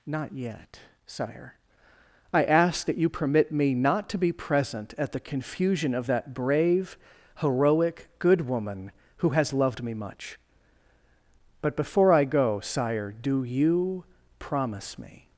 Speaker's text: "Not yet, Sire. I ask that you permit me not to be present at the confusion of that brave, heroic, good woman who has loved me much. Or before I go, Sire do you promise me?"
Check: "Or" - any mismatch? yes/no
yes